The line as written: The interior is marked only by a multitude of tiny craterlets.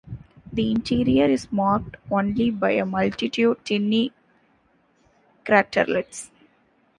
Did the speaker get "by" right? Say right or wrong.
right